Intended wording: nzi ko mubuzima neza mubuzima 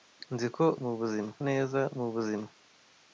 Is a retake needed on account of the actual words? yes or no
no